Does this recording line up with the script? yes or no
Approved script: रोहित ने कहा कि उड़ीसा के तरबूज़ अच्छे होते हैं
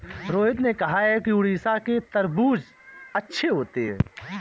yes